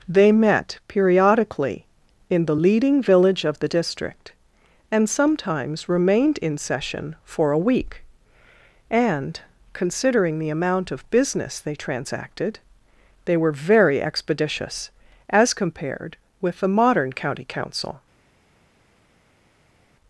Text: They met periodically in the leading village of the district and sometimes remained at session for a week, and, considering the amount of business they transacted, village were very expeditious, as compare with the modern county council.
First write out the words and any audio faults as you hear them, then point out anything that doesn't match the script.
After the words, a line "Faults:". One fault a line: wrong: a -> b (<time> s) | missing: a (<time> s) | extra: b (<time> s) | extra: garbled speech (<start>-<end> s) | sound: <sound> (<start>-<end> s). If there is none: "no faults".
They met periodically in the leading village of the district and sometimes remained in session for a week, and, considering the amount of business they transacted, they were very expeditious, as compared with the modern county council.
Faults:
wrong: at -> in (6.4 s)
wrong: village -> they (13.2 s)
wrong: compare -> compared (15.5 s)